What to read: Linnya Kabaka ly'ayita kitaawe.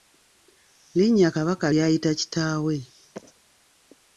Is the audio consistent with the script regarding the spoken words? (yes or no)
yes